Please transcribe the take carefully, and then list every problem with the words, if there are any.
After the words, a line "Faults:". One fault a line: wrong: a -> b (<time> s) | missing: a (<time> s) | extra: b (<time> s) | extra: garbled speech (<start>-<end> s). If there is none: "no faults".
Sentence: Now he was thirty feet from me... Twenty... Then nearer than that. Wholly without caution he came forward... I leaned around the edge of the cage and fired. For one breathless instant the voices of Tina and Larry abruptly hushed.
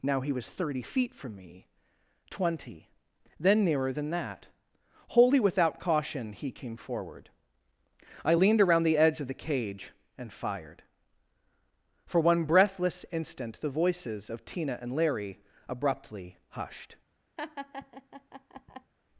Now he was thirty feet from me... Twenty... Then nearer than that. Wholly without caution he came forward... I leaned around the edge of the cage and fired. For one breathless instant the voices of Tina and Larry abruptly hushed.
Faults:
no faults